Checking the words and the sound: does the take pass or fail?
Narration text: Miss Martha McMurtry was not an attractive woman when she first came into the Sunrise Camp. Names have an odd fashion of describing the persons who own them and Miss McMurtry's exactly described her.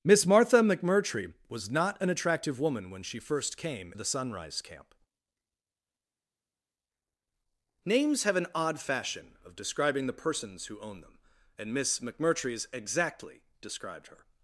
fail